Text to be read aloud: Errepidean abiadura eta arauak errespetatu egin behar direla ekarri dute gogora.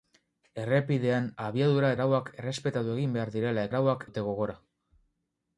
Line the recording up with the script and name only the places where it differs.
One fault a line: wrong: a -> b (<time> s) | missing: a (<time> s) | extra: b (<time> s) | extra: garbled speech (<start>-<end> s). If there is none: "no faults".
missing: eta (1.9 s)
wrong: ekarri -> arauak (3.7 s)